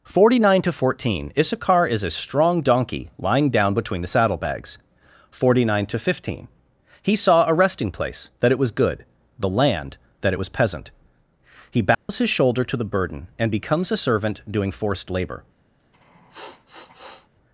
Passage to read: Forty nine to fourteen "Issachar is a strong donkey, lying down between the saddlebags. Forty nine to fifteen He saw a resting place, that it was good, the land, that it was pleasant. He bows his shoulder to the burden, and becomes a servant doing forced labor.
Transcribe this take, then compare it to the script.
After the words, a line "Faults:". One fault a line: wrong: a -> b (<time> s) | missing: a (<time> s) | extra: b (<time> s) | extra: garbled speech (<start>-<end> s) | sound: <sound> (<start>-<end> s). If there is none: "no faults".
Forty nine to fourteen "Issachar is a strong donkey, lying down between the saddlebags. Forty nine to fifteen He saw a resting place, that it was good, the land, that it was peasant. He bows his shoulder to the burden, and becomes a servant doing forced labor.
Faults:
wrong: pleasant -> peasant (10.5 s)
sound: dropout (11.9-12.1 s)
sound: sniff (15.8-17.3 s)